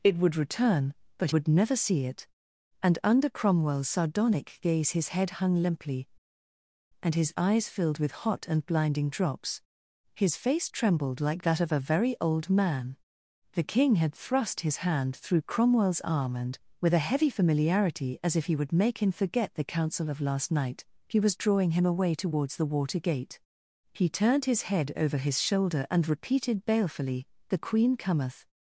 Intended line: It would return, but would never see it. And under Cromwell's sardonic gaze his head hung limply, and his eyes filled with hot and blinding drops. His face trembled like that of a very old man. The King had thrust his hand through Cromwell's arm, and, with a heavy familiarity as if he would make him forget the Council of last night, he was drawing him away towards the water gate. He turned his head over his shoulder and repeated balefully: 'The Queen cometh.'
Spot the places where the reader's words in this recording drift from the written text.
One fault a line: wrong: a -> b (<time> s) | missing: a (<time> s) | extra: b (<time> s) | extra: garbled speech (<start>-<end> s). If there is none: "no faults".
no faults